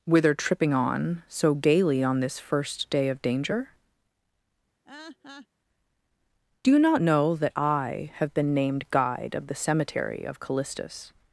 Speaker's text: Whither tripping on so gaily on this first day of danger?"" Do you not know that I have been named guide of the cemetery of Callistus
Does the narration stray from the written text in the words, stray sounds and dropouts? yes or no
yes